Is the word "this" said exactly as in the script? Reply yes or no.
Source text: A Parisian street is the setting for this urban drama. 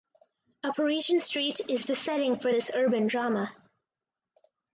yes